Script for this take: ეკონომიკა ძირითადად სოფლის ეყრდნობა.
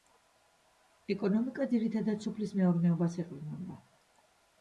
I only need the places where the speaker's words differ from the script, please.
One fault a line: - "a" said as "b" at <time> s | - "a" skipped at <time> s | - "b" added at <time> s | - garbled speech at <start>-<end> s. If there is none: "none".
- "მეურნეობას" added at 2.6 s